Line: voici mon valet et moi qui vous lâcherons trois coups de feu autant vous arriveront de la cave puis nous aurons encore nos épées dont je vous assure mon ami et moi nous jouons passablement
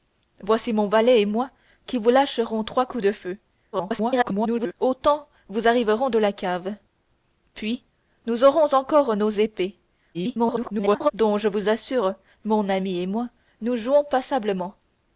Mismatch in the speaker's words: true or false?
true